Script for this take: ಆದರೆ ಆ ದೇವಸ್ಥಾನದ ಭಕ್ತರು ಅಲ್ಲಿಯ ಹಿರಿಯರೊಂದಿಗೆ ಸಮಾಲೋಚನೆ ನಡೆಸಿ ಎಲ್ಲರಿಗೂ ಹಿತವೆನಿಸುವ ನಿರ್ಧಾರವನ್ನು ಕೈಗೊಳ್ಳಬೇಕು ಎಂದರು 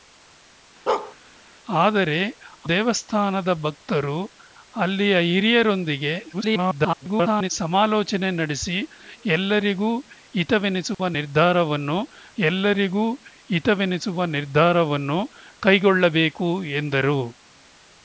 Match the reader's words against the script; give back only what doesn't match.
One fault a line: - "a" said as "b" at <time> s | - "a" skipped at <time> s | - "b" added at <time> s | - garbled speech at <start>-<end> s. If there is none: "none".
- "ಆ" skipped at 2.2 s
- garbled speech at 6.3-7.5 s
- "ಎಲ್ಲರಿಗೂ ಹಿತವೆನಿಸುವ ನಿರ್ಧಾರವನ್ನು" added at 12.4 s